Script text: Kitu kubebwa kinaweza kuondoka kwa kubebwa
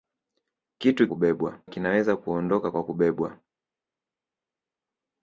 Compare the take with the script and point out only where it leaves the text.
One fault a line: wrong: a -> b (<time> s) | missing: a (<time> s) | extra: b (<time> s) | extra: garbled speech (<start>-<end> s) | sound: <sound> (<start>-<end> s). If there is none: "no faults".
no faults